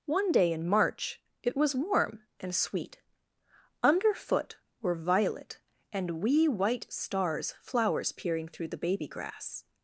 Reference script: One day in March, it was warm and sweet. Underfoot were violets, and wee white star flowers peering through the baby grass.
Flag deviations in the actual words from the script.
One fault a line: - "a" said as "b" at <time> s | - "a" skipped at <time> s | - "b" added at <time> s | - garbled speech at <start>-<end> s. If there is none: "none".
- "violets" said as "violet" at 5.0 s
- "star" said as "stars" at 6.9 s